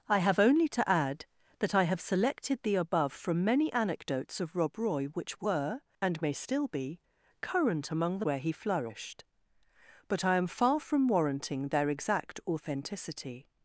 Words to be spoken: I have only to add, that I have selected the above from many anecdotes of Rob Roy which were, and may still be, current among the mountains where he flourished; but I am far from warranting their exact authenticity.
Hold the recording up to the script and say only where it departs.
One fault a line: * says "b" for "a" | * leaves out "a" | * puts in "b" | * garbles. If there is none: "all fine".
* leaves out "mountains"